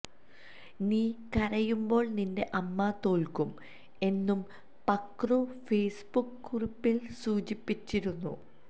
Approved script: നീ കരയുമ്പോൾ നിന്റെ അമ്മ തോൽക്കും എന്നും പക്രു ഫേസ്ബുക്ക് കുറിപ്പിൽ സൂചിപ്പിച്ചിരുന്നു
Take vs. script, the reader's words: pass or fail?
pass